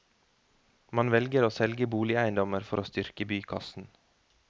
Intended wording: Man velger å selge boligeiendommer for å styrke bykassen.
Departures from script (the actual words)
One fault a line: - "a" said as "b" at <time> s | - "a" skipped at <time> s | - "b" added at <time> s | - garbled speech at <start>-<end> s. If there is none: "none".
none